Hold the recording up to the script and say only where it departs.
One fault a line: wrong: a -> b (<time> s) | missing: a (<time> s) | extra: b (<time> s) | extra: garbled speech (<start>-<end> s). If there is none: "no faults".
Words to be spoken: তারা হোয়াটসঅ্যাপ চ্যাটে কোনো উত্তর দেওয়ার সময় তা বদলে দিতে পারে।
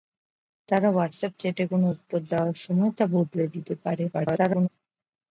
extra: garbled speech (4.1-4.7 s)